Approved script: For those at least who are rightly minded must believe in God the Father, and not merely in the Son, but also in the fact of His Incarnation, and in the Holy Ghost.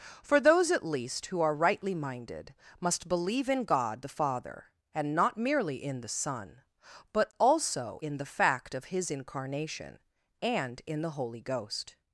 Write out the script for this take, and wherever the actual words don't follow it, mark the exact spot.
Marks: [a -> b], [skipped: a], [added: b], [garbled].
For those at least who are rightly minded must believe in God the Father, and not merely in the Son, but also in the fact of His Incarnation, and in the Holy Ghost.